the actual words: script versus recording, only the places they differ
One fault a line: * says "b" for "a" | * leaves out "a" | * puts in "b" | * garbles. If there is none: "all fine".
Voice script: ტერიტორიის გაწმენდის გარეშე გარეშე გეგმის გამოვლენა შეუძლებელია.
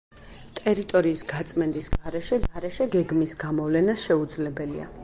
all fine